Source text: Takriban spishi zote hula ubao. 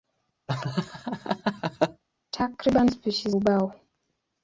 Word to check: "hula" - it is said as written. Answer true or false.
false